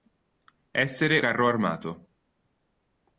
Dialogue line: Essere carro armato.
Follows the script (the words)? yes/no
yes